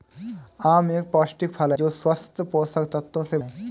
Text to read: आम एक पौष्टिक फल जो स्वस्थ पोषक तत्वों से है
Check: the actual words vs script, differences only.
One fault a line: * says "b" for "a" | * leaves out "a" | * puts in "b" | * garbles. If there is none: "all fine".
all fine